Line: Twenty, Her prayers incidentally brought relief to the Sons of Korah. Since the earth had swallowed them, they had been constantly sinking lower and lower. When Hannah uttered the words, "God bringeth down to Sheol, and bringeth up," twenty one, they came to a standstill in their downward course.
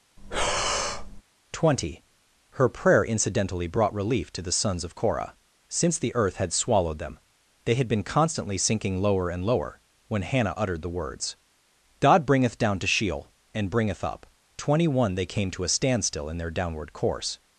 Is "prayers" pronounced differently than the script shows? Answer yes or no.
yes